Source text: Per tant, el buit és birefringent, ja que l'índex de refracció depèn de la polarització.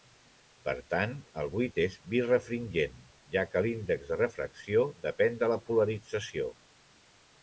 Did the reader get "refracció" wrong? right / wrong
right